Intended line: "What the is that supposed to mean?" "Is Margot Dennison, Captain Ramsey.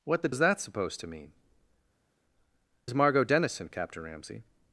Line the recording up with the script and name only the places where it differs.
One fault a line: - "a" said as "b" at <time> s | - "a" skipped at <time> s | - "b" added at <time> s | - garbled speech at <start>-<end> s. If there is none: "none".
none